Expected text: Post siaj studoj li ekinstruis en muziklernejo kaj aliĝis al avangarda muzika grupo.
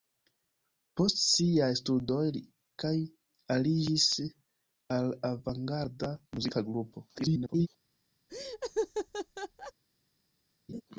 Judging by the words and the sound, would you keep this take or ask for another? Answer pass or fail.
fail